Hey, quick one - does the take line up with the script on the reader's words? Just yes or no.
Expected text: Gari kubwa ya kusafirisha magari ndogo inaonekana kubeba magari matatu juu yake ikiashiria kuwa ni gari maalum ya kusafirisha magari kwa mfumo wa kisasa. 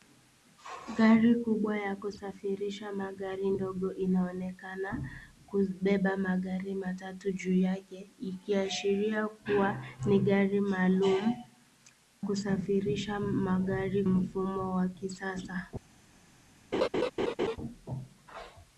no